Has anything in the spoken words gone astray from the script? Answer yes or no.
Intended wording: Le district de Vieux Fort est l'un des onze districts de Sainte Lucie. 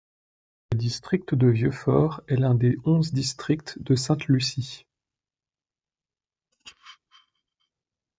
no